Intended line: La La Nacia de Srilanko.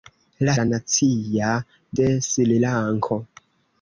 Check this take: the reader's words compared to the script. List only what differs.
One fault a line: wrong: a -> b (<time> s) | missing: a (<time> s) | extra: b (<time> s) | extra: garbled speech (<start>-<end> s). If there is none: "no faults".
no faults